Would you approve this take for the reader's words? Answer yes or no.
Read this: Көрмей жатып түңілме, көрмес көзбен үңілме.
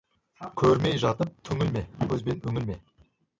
no